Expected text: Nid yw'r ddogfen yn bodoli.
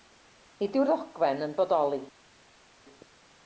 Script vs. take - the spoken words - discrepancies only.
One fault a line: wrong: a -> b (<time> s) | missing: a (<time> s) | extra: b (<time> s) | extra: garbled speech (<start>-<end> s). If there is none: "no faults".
no faults